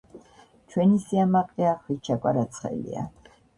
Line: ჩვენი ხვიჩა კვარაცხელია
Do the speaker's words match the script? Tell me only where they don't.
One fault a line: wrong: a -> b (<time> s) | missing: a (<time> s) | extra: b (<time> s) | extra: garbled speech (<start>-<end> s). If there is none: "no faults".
extra: სიამაყეა (1.0 s)